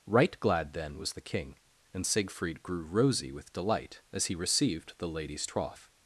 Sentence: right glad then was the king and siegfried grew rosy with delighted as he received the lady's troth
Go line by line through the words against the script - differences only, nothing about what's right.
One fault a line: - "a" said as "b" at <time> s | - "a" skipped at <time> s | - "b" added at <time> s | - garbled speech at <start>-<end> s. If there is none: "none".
- "delighted" said as "delight" at 3.5 s